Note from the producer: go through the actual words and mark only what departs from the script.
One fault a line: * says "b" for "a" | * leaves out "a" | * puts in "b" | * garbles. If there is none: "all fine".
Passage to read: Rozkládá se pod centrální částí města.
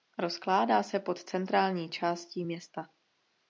all fine